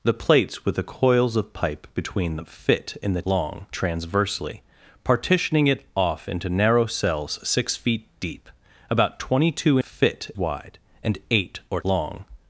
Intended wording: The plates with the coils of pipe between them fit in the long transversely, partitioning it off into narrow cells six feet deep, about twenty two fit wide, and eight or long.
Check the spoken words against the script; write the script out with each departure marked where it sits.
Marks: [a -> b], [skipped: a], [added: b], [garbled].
The plates with the coils of pipe between them fit in the long transversely, partitioning it off into narrow cells six feet deep, about twenty two fit wide, and eight or long.